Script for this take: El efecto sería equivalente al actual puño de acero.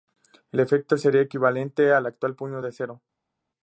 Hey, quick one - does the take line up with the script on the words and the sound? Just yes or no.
yes